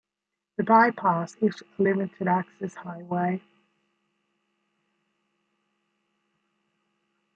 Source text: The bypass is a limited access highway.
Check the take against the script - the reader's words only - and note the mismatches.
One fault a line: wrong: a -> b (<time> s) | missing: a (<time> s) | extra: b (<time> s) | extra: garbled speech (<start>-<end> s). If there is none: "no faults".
no faults